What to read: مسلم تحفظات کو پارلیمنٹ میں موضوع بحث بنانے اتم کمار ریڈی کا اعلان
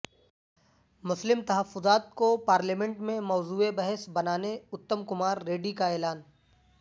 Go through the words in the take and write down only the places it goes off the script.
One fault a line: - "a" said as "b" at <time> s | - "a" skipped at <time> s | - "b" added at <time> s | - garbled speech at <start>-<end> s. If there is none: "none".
none